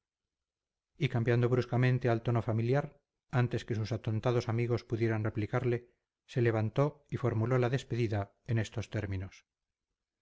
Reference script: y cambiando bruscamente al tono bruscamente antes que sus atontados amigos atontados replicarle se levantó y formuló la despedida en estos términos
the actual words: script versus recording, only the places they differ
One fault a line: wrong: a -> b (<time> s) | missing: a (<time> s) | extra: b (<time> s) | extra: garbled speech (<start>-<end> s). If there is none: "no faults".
wrong: bruscamente -> familiar (2.4 s)
wrong: atontados -> pudieran (4.8 s)